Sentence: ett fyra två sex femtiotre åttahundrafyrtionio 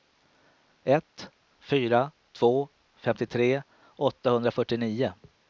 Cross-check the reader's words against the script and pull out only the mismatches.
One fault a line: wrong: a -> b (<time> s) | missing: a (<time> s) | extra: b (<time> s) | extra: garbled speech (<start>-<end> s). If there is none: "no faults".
missing: sex (2.7 s)